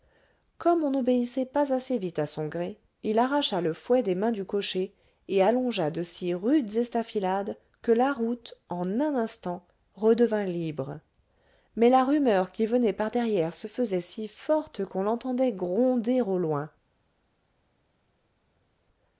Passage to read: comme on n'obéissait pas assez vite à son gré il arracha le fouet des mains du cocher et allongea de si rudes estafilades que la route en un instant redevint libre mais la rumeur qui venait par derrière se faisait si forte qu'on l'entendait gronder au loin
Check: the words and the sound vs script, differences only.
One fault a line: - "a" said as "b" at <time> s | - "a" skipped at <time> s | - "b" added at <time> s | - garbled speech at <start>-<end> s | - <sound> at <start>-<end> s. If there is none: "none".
none